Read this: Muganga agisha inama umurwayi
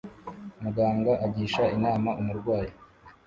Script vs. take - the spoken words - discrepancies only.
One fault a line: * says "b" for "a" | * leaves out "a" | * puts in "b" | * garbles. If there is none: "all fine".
all fine